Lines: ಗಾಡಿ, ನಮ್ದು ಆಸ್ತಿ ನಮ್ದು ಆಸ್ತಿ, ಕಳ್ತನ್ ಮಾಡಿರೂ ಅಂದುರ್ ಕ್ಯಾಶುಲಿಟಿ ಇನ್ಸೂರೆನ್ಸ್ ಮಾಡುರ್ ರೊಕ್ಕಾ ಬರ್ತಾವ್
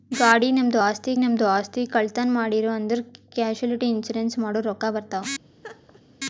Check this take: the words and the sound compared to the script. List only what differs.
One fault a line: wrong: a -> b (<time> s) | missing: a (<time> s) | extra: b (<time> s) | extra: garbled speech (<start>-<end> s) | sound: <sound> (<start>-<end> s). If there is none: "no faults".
sound: laugh (5.6-6.0 s)